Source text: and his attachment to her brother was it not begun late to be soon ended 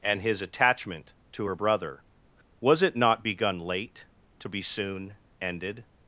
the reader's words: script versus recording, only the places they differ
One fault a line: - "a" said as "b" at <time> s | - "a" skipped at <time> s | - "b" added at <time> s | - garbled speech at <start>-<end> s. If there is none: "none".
none